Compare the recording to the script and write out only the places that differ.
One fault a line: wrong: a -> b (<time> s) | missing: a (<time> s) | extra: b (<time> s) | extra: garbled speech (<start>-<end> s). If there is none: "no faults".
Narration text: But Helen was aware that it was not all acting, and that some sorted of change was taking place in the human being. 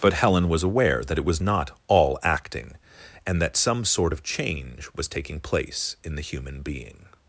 wrong: sorted -> sort (3.9 s)